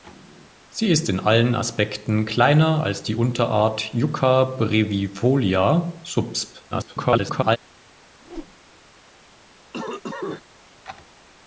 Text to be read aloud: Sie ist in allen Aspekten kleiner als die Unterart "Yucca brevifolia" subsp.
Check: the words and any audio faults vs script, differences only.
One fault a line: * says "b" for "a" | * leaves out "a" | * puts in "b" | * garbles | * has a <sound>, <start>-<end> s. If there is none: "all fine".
* garbles
* has a whoosh, 8.2-8.6 s
* has a cough, 9.7-10.4 s